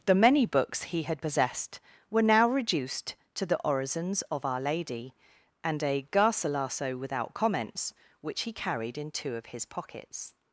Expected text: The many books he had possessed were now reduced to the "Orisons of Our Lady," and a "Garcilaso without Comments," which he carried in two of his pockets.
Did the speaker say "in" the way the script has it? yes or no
yes